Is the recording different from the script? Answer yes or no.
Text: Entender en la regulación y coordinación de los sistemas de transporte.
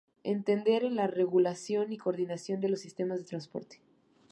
no